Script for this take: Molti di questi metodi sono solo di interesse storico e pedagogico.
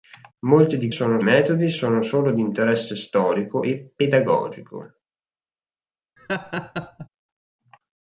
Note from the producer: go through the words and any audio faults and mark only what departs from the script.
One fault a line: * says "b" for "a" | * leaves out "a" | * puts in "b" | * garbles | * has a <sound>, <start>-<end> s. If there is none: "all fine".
* says "sono" for "questi"
* has a laugh, 6.2-7.1 s